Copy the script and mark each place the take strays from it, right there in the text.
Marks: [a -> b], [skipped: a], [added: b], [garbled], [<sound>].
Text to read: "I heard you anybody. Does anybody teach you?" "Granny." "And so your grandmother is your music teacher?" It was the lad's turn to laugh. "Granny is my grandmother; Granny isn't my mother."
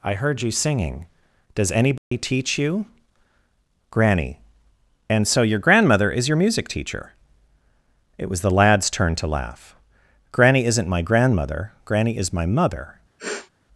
"I heard you [anybody. -> singing] Does anybody [dropout] teach you?" "Granny." "And so your grandmother is your music teacher?" It was the lad's turn to laugh. "Granny [is -> isn't] my grandmother; Granny [isn't -> is] my mother." [sniff]